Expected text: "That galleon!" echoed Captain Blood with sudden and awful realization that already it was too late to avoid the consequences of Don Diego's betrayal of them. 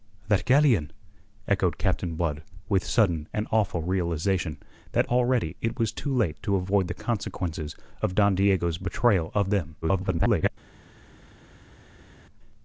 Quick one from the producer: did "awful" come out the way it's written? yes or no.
yes